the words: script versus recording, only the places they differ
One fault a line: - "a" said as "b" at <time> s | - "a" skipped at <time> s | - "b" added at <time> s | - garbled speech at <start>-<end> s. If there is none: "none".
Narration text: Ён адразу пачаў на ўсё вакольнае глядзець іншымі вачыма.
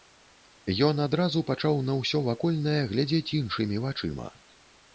none